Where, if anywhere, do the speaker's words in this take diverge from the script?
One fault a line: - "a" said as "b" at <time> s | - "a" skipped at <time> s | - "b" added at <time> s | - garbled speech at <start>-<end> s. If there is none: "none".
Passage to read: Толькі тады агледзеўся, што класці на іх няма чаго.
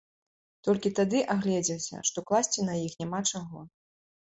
none